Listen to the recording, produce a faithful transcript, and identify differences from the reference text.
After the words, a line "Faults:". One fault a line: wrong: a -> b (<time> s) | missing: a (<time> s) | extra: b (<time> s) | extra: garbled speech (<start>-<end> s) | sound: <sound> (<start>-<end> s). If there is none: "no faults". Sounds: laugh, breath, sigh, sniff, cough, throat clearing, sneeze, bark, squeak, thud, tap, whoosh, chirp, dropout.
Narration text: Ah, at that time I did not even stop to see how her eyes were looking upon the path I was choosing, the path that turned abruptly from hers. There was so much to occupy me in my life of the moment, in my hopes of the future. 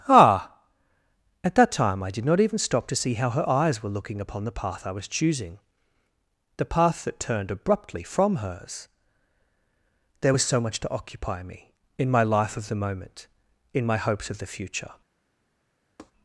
Ah, at that time I did not even stop to see how her eyes were looking upon the path I was choosing, the path that turned abruptly from hers. There was so much to occupy me in my life of the moment, in my hopes of the future.
Faults:
sound: tap (16.0-16.1 s)